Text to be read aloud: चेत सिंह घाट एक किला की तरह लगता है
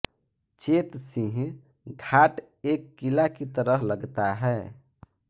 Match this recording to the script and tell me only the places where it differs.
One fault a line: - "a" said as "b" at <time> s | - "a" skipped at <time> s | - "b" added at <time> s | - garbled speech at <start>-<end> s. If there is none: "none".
none